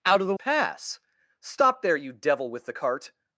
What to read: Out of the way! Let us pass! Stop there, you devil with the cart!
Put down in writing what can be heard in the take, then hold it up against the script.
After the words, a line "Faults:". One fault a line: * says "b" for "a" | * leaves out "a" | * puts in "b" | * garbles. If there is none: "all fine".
Out of the pass! Stop there, you devil with the cart!
Faults:
* leaves out "way Let us"